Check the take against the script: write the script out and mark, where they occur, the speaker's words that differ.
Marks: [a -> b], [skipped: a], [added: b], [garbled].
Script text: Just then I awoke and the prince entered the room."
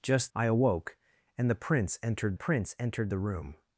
Just [skipped: then] I awoke and the prince entered [added: prince entered] the room."